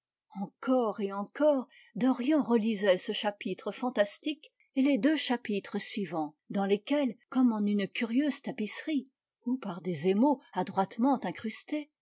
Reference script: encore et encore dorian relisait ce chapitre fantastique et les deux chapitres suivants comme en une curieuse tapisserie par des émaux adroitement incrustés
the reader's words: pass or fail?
fail